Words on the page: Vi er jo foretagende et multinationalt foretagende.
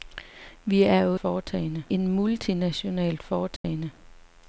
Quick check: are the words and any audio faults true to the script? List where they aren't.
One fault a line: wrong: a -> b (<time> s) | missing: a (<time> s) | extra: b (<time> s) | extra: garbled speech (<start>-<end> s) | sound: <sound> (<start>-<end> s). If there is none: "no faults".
sound: dropout (3.6-3.6 s)